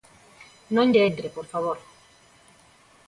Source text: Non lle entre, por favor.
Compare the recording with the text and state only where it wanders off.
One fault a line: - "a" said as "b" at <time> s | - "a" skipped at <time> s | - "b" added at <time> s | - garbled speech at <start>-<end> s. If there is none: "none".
none